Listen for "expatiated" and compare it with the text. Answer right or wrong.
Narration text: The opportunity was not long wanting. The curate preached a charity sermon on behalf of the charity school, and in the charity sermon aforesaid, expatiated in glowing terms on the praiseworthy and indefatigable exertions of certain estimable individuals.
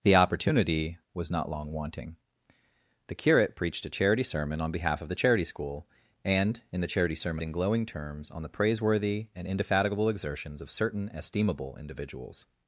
wrong